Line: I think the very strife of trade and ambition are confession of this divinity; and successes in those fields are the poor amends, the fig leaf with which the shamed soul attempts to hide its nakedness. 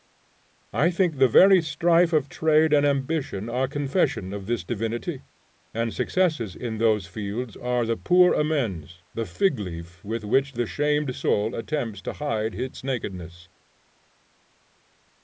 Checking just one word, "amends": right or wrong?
right